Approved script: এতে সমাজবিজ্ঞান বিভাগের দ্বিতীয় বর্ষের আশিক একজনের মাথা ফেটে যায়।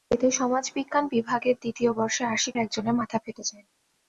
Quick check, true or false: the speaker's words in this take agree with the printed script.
true